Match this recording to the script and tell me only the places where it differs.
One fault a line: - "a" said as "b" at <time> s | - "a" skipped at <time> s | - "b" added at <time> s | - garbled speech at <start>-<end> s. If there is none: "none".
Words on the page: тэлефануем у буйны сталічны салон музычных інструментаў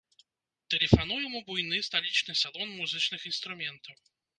none